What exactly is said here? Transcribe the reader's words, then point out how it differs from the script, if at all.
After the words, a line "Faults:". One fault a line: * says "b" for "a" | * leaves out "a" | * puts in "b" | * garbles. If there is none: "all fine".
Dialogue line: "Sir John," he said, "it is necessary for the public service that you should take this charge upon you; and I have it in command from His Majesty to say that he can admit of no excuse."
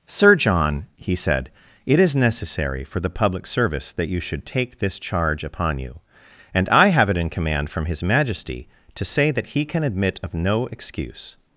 "Sir John," he said, "it is necessary for the public service that you should take this charge upon you; and I have it in command from His Majesty to say that he can admit of no excuse."
Faults:
all fine